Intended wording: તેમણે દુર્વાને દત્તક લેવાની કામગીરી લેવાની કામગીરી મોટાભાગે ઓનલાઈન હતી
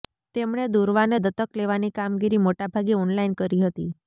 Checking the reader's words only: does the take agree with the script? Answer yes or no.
no